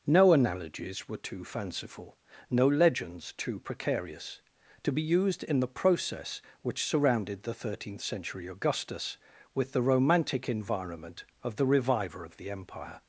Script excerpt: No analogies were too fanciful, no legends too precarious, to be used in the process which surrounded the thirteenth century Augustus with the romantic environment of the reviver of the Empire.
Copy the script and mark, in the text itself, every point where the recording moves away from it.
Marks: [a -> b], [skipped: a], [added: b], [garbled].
No analogies were too fanciful, no legends too precarious, to be used in the process which surrounded the thirteenth century Augustus with the romantic environment of the reviver of the Empire.